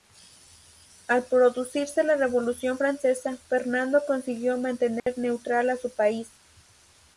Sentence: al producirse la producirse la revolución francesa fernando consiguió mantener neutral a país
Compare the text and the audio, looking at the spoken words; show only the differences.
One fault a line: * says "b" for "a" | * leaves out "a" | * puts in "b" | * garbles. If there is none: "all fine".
* leaves out "producirse la"
* puts in "su"